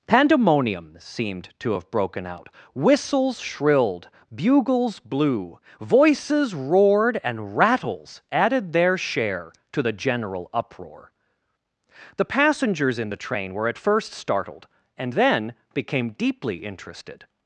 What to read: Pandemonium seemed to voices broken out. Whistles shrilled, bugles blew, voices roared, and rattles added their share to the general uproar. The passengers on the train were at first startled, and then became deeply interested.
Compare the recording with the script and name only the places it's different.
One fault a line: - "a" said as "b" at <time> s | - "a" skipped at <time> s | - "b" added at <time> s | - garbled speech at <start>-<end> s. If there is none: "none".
- "voices" said as "have" at 1.7 s
- "on" said as "in" at 13.0 s